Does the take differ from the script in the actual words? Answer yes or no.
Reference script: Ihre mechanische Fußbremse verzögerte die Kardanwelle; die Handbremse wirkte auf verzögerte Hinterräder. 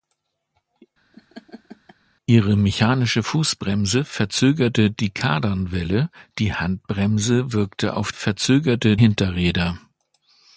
no